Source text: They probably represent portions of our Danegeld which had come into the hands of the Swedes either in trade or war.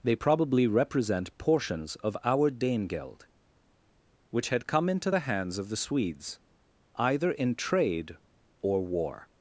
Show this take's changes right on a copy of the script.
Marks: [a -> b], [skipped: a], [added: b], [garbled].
They probably represent portions of our Danegeld which had come into the hands of the Swedes either in trade or war.